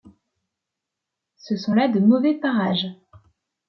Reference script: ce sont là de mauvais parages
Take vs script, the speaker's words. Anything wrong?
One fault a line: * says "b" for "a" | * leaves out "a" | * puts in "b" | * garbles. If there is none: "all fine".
all fine